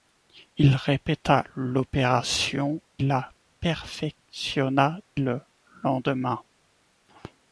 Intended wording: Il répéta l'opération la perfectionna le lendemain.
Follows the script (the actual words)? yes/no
yes